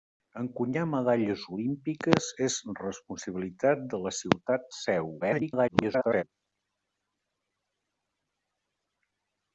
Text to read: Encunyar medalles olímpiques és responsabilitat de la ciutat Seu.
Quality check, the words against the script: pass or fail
fail